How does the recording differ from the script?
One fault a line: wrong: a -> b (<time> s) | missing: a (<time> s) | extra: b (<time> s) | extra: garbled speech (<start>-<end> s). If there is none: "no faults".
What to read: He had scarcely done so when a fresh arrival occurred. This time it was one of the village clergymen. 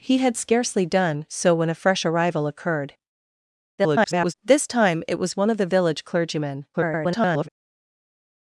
extra: garbled speech (3.8-4.3 s)
extra: garbled speech (6.7-7.5 s)